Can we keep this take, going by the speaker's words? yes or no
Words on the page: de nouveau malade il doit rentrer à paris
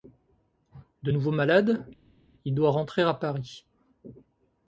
yes